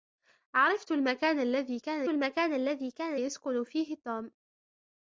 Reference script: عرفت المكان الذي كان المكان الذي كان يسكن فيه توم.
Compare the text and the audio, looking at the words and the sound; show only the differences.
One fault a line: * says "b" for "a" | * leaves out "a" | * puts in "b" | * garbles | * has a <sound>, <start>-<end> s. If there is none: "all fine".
all fine